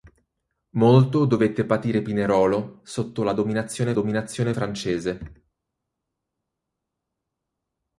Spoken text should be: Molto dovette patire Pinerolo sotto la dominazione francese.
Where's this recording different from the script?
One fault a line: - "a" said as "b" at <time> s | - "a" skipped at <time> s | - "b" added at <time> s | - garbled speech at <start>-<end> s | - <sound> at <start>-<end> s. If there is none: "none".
- "dominazione" added at 3.9 s